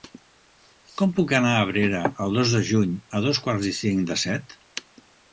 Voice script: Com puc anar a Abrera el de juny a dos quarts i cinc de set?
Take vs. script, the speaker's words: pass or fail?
fail